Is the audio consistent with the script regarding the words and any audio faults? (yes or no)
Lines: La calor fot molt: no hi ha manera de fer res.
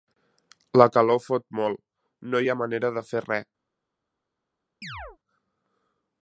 no